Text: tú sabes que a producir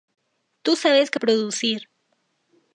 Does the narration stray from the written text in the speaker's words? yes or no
no